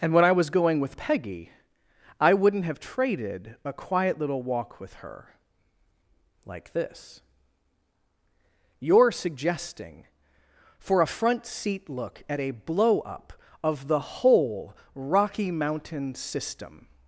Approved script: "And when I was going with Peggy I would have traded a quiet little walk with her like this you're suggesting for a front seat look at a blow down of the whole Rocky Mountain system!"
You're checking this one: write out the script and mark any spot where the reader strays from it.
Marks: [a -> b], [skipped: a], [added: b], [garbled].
"And when I was going with Peggy I [would -> wouldn't] have traded a quiet little walk with her like this you're suggesting for a front seat look at a blow [down -> up] of the whole Rocky Mountain system!"